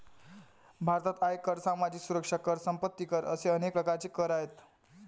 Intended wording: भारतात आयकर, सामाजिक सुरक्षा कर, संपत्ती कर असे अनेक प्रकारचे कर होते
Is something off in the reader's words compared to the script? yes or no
yes